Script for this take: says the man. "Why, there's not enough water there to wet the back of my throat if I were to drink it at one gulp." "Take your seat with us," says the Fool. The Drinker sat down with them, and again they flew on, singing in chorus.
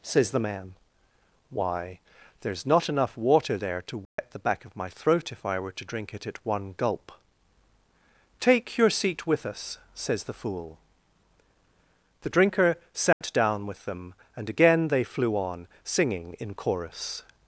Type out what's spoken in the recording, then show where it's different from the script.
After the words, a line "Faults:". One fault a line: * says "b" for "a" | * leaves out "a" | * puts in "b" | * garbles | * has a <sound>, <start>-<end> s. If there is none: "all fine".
says the man. "Why, there's not enough water there to wet the back of my throat if I were to drink it at one gulp." "Take your seat with us," says the Fool. The Drinker sat down with them, and again they flew on, singing in chorus.
Faults:
* has a dropout, 4.0-4.2 s
* has a dropout, 13.1-13.2 s